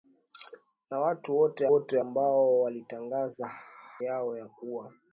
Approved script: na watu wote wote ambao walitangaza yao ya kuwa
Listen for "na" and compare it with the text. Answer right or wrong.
right